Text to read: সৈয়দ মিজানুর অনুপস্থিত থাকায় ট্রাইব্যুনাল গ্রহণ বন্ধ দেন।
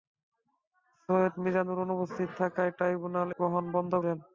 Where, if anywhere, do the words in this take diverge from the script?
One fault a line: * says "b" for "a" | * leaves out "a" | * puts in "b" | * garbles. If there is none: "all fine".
all fine